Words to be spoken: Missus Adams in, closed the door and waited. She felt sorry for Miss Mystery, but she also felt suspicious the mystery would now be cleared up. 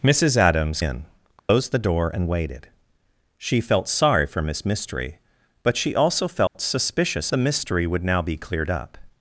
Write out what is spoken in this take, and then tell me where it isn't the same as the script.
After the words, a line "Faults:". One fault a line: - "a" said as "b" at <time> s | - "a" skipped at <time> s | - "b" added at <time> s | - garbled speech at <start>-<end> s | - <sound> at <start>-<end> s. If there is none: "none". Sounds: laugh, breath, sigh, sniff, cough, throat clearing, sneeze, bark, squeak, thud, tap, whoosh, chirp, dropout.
Missus Adams in, closed the door and waited. She felt sorry for Miss Mystery, but she also felt suspicious the mystery would now be cleared up.
Faults:
- dropout at 1.4-1.5 s
- dropout at 6.5-6.5 s